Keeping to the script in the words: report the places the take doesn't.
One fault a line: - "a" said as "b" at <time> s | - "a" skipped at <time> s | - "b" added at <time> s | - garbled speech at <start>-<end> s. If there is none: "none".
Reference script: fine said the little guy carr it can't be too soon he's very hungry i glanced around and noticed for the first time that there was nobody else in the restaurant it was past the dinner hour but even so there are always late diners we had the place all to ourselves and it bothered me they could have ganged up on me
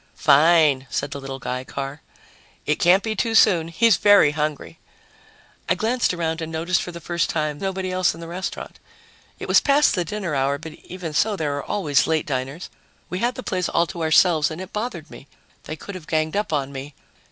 - "that there was" skipped at 7.6 s